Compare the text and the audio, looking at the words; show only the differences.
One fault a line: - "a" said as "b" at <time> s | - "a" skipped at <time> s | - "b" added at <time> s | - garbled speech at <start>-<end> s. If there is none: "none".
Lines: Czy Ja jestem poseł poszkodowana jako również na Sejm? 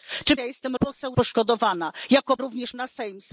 none